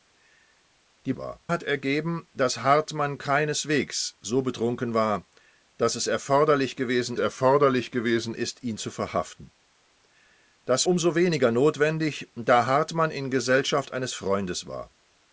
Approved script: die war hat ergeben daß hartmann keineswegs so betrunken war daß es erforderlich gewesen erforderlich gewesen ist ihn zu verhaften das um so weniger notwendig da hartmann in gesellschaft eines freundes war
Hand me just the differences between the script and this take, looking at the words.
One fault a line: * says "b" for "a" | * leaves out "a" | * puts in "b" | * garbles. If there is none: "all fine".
all fine